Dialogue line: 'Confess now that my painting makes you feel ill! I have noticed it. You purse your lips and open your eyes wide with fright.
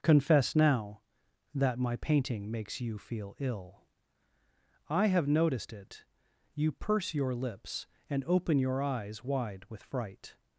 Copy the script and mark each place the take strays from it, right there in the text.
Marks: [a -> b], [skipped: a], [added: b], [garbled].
'Confess now that my painting makes you feel ill! I have noticed it. You purse your lips and open your eyes wide with fright.